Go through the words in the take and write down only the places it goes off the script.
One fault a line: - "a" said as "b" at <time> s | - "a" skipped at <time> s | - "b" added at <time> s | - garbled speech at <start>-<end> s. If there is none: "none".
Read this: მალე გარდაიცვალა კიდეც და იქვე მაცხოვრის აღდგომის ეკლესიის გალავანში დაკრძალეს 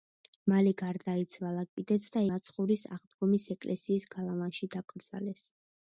- "იქვე" skipped at 2.2 s